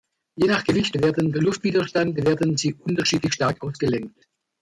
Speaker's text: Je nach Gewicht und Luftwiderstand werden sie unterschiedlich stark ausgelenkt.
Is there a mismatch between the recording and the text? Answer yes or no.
yes